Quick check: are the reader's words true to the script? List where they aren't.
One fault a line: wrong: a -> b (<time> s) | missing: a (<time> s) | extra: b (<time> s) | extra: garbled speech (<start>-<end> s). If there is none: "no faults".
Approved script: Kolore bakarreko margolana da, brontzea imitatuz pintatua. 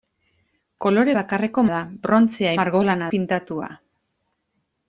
missing: margolana (1.6 s)
wrong: imitatuz -> margolana (2.6 s)